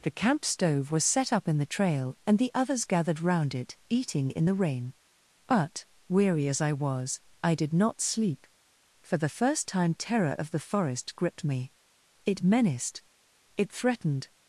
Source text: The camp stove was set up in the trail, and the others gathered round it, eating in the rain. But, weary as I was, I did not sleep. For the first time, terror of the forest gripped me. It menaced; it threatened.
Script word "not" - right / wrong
right